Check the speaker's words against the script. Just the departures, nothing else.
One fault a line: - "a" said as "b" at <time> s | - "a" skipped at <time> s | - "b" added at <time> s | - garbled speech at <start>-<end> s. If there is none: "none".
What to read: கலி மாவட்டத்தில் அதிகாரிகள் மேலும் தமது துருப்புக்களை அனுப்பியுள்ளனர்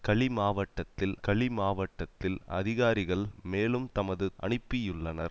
- "கலி மாவட்டத்தில்" added at 1.2 s
- "துருப்புக்களை" skipped at 4.3 s